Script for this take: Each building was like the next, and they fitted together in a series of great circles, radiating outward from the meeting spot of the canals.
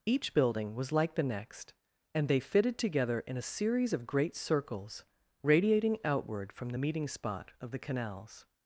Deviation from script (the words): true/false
false